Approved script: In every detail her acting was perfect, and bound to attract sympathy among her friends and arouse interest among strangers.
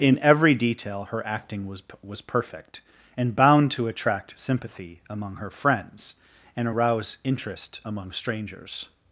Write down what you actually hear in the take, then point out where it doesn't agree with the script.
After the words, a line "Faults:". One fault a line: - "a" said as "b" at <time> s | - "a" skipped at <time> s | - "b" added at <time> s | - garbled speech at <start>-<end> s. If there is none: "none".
In every detail her acting was was perfect, and bound to attract sympathy among her friends and arouse interest among strangers.
Faults:
- "was" added at 2.0 s